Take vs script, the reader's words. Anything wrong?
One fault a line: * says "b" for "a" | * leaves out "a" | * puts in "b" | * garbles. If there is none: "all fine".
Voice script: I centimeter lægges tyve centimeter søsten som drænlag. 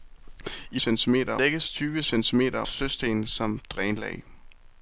all fine